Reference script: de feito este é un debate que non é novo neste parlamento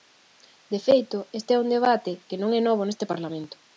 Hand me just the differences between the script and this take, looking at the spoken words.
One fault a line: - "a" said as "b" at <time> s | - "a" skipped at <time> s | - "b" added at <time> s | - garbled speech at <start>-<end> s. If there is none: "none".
none